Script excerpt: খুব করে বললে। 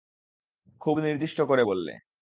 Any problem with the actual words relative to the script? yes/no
yes